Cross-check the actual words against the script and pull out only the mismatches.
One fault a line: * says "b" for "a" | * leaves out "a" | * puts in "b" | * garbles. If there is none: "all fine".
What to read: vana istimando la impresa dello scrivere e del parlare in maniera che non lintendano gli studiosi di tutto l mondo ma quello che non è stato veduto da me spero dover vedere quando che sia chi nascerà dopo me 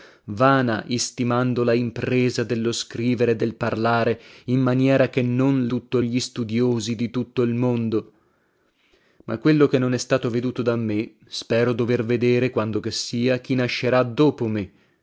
* says "tutto" for "lintendano"